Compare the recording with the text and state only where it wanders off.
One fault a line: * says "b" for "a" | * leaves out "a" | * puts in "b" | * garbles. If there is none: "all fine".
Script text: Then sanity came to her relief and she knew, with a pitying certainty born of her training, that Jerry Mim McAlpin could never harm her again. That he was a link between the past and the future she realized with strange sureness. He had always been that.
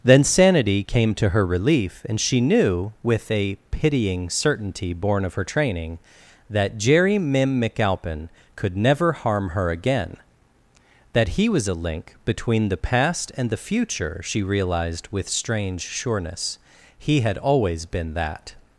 all fine